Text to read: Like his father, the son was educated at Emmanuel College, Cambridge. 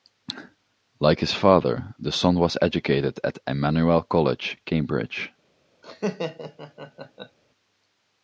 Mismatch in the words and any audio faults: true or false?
true